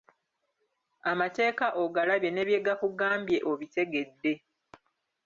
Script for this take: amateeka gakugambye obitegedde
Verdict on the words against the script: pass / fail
fail